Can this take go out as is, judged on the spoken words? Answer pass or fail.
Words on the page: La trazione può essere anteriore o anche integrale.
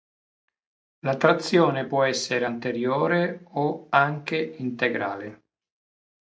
pass